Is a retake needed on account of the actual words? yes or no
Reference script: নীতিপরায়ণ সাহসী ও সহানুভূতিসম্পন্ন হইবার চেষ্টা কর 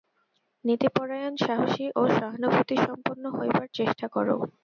no